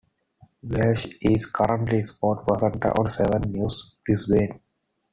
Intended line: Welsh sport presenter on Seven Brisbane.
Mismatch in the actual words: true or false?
true